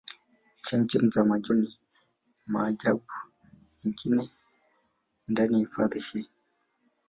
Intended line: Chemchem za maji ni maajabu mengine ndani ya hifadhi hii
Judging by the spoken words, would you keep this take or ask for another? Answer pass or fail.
pass